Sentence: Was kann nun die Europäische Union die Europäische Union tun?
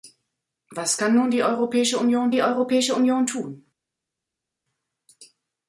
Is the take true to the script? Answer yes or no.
yes